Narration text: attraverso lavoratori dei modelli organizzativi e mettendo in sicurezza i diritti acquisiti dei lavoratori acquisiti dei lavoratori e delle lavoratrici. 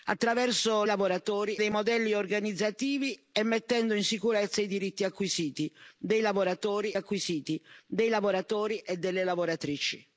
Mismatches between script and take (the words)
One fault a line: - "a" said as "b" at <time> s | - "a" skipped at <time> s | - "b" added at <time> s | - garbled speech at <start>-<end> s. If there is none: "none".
none